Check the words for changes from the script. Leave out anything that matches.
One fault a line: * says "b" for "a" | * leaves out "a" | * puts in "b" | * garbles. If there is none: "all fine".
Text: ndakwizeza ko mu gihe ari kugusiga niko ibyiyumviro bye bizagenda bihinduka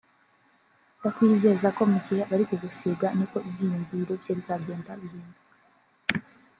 all fine